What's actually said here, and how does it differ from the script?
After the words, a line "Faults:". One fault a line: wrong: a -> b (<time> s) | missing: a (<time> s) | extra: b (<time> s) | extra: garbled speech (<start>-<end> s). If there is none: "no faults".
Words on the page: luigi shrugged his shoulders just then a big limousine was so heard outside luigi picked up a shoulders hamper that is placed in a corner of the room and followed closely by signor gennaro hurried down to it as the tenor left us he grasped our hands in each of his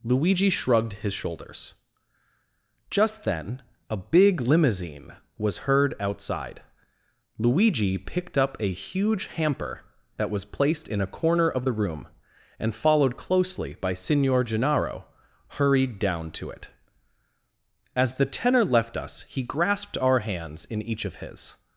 luigi shrugged his shoulders just then a big limousine was heard outside luigi picked up a huge hamper that was placed in a corner of the room and followed closely by signor gennaro hurried down to it as the tenor left us he grasped our hands in each of his
Faults:
missing: so (5.7 s)
wrong: shoulders -> huge (8.7 s)
wrong: is -> was (10.3 s)